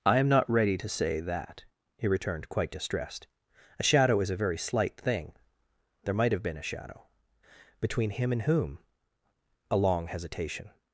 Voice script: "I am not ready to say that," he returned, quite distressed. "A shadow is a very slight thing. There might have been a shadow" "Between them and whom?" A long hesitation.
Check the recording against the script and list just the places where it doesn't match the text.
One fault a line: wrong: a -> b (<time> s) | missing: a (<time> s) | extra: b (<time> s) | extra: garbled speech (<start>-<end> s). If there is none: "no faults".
wrong: them -> him (8.1 s)